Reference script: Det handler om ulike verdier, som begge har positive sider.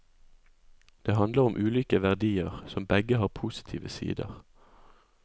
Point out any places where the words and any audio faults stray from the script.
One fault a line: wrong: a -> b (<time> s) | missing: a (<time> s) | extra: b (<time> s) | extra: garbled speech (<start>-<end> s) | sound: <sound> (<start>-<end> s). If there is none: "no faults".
no faults